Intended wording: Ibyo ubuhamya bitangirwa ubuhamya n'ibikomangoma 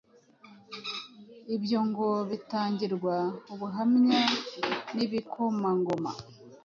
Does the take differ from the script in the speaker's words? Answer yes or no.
yes